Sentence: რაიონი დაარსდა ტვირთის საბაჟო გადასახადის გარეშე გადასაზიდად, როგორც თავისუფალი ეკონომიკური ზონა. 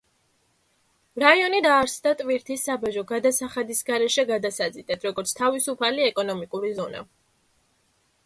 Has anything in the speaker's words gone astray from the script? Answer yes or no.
no